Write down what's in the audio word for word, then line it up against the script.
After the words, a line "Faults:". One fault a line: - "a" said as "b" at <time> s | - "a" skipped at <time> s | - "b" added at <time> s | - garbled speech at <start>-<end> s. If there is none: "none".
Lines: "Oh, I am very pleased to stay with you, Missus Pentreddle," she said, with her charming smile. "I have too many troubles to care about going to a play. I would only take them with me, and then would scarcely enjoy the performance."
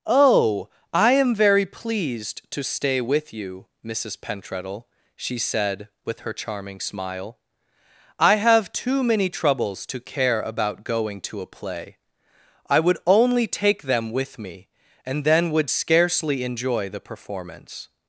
"Oh, I am very pleased to stay with you, Missus Pentreddle," she said, with her charming smile. "I have too many troubles to care about going to a play. I would only take them with me, and then would scarcely enjoy the performance."
Faults:
none